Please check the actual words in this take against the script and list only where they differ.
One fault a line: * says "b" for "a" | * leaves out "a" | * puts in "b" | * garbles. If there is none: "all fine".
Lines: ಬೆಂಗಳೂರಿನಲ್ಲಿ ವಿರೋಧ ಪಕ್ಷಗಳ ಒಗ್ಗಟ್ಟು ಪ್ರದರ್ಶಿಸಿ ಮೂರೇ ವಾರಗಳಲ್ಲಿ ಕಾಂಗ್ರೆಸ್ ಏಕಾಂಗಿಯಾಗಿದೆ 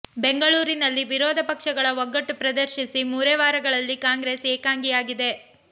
all fine